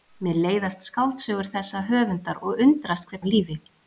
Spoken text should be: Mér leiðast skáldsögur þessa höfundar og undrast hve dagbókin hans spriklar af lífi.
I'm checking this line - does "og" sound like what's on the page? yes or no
yes